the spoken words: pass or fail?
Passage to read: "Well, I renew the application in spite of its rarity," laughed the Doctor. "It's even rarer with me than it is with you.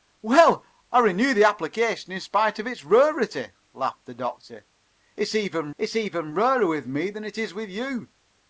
fail